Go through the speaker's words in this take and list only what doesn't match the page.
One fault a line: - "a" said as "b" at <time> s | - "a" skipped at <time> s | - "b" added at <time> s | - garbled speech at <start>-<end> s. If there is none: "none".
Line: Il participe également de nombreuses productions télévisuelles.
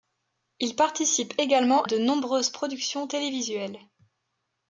none